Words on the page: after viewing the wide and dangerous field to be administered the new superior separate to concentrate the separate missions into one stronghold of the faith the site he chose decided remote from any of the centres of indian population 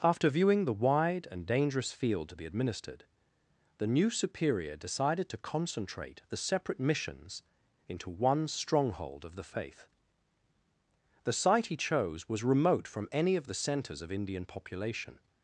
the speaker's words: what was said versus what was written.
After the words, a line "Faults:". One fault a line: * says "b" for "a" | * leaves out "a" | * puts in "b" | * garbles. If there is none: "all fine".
after viewing the wide and dangerous field to be administered the new superior decided to concentrate the separate missions into one stronghold of the faith the site he chose was remote from any of the centres of indian population
Faults:
* says "decided" for "separate"
* says "was" for "decided"